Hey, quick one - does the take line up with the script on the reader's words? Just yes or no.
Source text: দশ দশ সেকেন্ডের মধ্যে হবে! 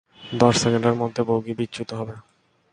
no